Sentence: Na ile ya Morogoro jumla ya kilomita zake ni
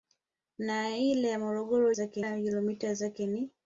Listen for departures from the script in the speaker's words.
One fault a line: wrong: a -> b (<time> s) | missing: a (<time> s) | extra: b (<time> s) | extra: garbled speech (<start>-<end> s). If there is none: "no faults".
wrong: jumla -> zake (1.9 s)